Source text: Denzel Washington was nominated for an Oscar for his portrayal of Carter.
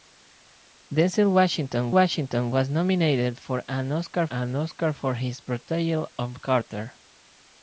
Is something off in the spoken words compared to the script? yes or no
yes